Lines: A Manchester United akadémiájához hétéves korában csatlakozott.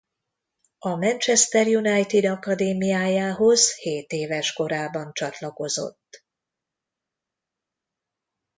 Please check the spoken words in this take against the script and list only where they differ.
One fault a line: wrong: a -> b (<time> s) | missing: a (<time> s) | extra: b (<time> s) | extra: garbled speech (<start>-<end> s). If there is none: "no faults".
no faults